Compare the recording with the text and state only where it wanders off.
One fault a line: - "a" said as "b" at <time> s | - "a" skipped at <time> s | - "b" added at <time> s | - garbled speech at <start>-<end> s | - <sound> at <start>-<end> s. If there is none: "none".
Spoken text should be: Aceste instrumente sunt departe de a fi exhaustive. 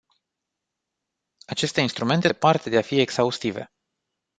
- "sunt" skipped at 2.3 s